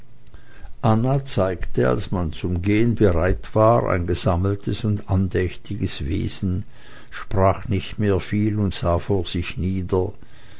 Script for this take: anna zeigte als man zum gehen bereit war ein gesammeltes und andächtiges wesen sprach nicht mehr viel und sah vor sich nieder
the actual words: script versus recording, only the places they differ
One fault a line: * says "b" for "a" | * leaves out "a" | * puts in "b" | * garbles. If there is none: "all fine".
all fine